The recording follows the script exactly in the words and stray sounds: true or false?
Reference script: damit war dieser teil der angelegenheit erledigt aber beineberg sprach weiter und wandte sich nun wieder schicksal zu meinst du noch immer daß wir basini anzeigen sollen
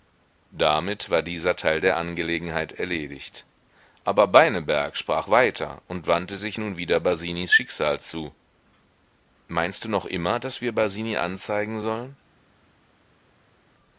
false